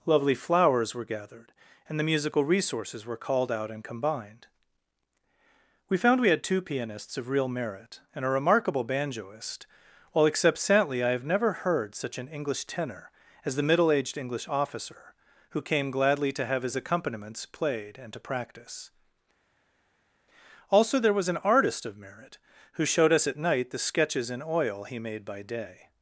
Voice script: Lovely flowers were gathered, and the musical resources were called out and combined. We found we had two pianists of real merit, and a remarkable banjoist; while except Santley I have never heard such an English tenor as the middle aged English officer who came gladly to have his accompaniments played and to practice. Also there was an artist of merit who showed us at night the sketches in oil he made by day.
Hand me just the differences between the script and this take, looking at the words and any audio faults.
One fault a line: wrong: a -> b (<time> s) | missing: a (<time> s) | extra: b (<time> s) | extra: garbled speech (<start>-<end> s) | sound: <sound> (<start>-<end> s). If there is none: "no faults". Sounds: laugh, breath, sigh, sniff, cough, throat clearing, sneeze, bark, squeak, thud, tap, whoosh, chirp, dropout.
no faults